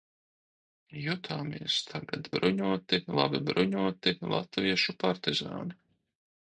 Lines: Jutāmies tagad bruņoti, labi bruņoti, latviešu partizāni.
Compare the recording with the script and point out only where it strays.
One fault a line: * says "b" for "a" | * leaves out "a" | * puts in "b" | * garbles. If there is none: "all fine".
all fine